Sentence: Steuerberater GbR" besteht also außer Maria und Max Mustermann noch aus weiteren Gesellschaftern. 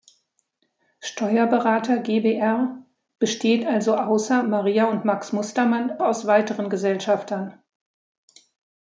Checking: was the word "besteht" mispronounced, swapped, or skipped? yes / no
no